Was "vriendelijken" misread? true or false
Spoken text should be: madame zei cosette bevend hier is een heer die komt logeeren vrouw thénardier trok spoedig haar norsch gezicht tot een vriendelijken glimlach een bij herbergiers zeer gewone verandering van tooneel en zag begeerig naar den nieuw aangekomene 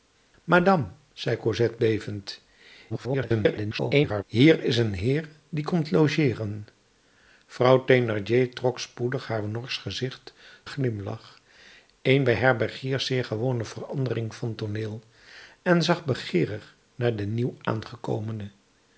true